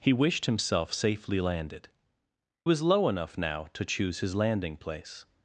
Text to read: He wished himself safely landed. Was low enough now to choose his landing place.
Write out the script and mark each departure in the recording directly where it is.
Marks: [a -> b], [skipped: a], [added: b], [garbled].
He wished himself safely landed. Was low enough now to choose his landing place.